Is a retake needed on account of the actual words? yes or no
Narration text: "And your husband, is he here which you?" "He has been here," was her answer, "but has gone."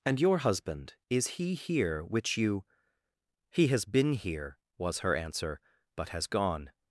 no